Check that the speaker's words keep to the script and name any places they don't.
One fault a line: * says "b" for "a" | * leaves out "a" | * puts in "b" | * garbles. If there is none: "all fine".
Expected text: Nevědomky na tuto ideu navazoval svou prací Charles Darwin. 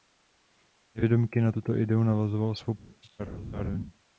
all fine